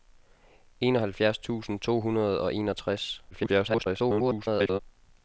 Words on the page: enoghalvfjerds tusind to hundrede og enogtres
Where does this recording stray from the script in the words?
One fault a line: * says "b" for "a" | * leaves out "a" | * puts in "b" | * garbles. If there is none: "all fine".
* garbles